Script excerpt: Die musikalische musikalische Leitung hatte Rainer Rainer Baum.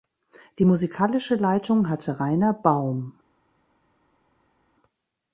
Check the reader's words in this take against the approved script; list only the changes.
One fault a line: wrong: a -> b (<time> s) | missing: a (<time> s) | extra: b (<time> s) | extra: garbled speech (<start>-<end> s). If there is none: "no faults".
missing: musikalische (1.4 s)
missing: Rainer (2.5 s)